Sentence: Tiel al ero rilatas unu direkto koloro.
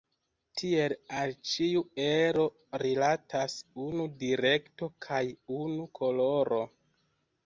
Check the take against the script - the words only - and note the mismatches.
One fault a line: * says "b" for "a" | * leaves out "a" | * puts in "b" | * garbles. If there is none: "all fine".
* puts in "ĉiu"
* puts in "kaj unu"